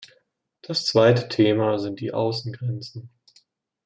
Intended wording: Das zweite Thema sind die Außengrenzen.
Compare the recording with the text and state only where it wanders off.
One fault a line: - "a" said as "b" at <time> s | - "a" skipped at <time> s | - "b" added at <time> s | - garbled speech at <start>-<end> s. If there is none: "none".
none